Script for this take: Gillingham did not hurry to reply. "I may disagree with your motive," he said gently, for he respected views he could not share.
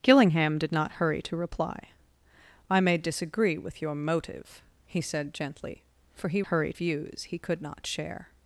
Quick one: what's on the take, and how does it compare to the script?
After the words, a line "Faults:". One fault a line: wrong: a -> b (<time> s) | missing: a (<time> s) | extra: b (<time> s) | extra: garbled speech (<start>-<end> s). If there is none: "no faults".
Gillingham did not hurry to reply. "I may disagree with your motive," he said gently, for he hurry views he could not share.
Faults:
wrong: respected -> hurry (6.4 s)